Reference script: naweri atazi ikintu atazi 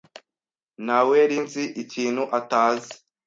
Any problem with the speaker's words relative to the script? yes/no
yes